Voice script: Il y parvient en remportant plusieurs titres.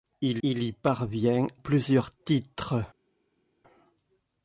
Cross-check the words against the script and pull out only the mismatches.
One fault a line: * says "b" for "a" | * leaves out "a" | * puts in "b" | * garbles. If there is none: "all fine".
* puts in "il"
* leaves out "en remportant"